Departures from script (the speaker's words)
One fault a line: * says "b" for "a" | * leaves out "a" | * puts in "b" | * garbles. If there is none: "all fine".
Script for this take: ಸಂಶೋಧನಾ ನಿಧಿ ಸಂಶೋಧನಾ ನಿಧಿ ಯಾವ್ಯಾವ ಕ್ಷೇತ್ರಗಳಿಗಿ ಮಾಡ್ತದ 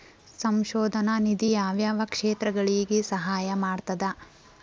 * leaves out "ಸಂಶೋಧನಾ ನಿಧಿ"
* puts in "ಸಹಾಯ"